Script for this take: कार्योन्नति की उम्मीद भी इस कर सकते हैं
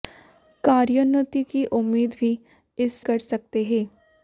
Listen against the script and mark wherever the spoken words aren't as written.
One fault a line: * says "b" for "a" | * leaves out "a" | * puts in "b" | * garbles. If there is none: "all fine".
all fine